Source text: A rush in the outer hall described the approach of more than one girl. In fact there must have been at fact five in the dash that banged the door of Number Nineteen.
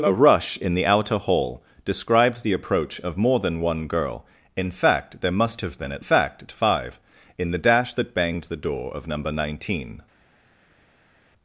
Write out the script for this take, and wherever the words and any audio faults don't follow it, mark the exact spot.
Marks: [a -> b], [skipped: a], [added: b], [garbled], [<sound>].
A rush in the outer hall described the approach of more than one girl. In fact there must have been at fact five in the dash that banged the door of Number Nineteen.